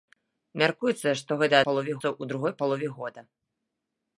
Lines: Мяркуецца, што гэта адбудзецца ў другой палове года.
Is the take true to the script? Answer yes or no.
no